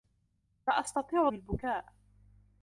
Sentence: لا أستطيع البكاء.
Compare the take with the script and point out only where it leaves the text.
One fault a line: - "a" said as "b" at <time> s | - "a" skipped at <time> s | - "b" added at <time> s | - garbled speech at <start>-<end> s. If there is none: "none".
none